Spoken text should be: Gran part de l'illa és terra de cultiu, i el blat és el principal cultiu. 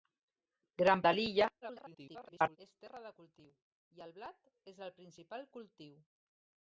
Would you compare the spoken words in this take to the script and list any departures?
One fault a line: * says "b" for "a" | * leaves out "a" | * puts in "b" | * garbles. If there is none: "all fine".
* leaves out "part"
* garbles